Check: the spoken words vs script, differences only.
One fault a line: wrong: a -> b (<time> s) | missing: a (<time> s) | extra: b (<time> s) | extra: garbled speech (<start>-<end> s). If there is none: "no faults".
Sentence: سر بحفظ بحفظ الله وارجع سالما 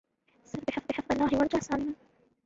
no faults